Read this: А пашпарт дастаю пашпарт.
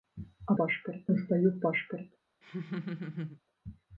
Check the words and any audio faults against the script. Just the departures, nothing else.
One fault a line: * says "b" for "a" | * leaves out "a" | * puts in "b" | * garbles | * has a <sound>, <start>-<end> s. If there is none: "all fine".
* has a laugh, 2.4-3.4 s